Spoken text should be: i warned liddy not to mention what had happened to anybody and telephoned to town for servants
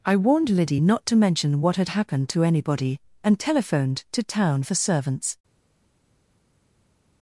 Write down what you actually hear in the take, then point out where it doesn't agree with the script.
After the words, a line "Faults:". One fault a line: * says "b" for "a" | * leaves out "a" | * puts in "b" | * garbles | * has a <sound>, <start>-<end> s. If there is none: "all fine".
i warned liddy not to mention what had happened to anybody and telephoned to town for servants
Faults:
all fine